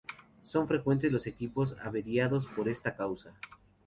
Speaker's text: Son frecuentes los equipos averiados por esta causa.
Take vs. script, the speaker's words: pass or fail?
pass